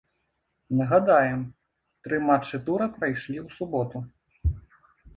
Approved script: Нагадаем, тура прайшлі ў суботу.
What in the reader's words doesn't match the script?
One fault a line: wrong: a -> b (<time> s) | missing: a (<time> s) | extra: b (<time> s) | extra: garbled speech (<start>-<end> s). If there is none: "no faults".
extra: тры матчы (2.1 s)